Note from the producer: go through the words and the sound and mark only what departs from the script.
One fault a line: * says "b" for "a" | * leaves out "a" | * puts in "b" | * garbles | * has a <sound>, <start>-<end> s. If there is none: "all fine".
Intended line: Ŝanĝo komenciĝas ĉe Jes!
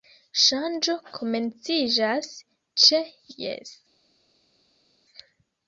all fine